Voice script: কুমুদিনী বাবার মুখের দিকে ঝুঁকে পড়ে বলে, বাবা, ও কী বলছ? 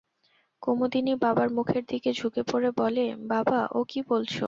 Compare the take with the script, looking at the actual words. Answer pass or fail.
pass